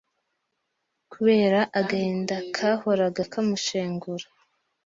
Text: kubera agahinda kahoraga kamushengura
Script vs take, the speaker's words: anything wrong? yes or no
no